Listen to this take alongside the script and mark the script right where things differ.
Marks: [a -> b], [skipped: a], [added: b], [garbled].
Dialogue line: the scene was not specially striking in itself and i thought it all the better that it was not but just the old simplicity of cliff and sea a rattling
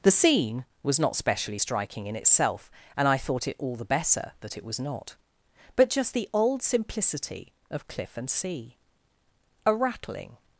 the scene was not specially striking in itself and i thought it all the better that it was not but just the old simplicity of cliff and sea a rattling